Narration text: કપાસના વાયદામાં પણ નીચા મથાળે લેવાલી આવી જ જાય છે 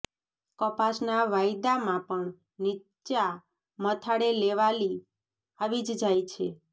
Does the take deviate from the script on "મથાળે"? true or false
false